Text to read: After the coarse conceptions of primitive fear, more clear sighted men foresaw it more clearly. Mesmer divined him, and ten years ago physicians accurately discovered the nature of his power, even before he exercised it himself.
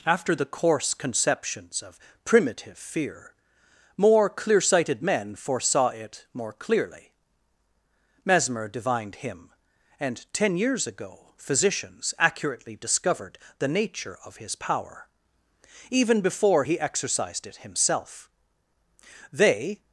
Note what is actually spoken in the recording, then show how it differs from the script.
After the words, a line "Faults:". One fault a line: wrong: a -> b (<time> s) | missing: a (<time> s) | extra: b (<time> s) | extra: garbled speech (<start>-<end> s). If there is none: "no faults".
After the coarse conceptions of primitive fear, more clear sighted men foresaw it more clearly. Mesmer divined him, and ten years ago physicians accurately discovered the nature of his power, even before he exercised it himself. They
Faults:
extra: They (19.3 s)